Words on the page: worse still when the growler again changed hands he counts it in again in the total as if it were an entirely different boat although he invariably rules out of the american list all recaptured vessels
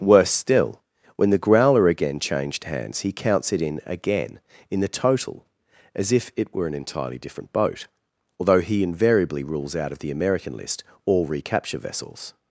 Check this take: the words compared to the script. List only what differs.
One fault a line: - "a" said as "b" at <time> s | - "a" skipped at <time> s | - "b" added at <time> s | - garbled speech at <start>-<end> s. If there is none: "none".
- "recaptured" said as "recapture" at 11.3 s